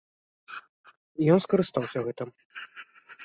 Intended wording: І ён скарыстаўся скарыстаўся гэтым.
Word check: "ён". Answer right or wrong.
right